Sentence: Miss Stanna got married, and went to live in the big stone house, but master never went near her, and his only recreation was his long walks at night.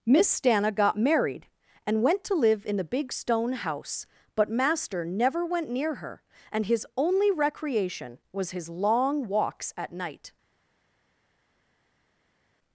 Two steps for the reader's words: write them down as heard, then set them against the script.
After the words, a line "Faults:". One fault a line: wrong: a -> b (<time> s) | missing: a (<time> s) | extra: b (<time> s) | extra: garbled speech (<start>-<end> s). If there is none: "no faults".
Miss Stanna got married, and went to live in the big stone house, but master never went near her, and his only recreation was his long walks at night.
Faults:
no faults